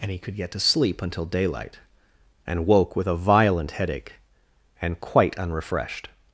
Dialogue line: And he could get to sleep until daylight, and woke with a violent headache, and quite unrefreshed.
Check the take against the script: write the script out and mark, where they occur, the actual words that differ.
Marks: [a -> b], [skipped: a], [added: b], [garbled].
And he could get to sleep until daylight, and woke with a violent headache, and quite unrefreshed.